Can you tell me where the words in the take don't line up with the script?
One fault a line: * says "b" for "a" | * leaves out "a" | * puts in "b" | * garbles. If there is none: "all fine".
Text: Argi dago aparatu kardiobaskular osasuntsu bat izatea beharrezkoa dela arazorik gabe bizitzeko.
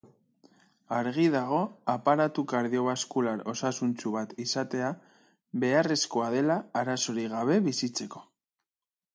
all fine